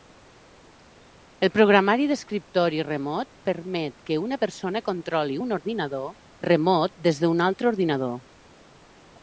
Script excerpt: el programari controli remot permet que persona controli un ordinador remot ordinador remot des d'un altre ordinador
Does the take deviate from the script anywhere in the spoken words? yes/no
yes